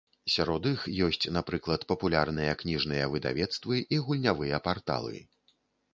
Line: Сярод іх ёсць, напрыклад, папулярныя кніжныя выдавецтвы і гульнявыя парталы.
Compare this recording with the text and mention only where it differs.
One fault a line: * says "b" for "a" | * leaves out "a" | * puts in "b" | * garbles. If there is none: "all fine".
all fine